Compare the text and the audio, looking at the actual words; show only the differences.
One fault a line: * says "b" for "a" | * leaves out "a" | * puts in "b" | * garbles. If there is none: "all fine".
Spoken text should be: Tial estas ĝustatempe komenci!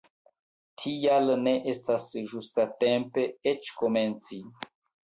* puts in "ne"
* puts in "eĉ"